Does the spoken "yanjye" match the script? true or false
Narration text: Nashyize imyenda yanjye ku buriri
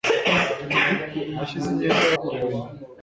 false